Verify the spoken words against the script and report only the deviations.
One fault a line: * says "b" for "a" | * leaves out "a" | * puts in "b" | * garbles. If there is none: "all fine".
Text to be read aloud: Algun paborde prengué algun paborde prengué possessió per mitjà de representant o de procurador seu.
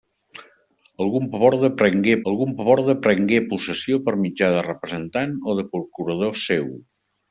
all fine